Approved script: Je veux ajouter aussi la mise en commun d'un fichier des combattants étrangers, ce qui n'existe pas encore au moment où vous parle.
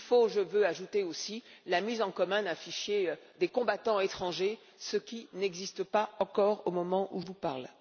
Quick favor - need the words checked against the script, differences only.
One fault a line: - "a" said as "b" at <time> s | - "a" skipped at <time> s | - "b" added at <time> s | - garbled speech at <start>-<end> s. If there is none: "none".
none